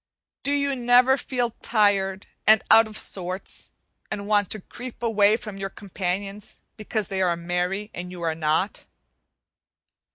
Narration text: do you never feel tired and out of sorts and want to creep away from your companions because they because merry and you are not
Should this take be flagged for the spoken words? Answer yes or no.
yes